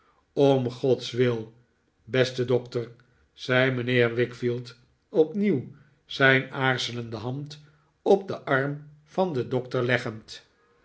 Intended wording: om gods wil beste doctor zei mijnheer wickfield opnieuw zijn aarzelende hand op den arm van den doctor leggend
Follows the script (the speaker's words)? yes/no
yes